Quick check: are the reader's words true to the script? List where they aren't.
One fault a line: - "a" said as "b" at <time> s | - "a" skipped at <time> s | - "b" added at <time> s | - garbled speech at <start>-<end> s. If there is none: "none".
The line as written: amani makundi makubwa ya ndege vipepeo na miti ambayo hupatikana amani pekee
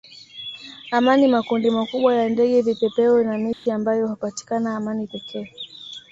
none